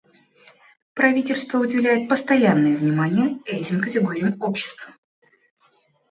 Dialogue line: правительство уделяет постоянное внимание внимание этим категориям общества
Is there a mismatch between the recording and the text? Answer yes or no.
yes